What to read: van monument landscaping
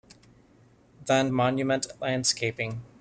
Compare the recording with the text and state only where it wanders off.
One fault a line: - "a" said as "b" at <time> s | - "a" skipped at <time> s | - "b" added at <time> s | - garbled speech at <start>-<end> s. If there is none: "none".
none